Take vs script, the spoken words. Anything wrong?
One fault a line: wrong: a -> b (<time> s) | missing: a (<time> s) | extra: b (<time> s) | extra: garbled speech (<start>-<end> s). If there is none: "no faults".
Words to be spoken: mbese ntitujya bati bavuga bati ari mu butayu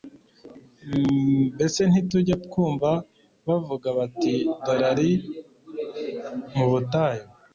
wrong: bati -> twumva (2.5 s)
extra: dore (4.6 s)